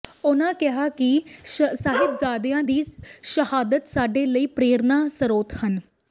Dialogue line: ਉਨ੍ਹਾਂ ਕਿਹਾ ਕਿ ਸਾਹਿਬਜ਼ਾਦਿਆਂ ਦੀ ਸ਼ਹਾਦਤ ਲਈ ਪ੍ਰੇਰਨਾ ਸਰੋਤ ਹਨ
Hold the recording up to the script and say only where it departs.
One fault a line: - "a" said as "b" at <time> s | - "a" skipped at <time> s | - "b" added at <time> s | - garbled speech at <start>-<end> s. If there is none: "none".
- "ਸਾਡੇ" added at 3.9 s